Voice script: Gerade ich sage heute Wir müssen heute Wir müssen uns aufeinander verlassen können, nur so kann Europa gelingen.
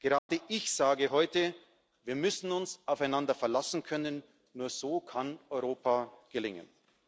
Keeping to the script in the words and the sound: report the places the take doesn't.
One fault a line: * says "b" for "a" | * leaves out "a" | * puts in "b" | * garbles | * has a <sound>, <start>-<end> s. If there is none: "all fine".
* has a dropout, 0.2-0.3 s
* leaves out "heute Wir müssen"